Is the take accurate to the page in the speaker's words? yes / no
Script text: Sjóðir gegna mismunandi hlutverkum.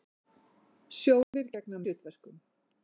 no